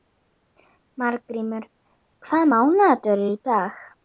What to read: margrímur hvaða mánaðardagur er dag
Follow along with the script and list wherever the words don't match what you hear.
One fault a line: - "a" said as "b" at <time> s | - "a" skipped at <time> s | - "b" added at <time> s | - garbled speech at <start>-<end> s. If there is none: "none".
- "í" added at 3.3 s